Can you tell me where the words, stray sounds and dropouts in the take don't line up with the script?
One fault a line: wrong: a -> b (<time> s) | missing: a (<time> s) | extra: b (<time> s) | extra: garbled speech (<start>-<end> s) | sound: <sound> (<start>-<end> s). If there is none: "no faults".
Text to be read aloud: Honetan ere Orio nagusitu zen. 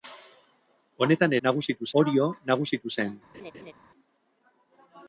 wrong: ere -> nagusitu (1.5 s)
sound: laugh (3.3-3.7 s)